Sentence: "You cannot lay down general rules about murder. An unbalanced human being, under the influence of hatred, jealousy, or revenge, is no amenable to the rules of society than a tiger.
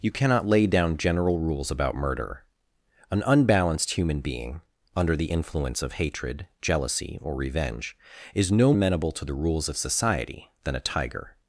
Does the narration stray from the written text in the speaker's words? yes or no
no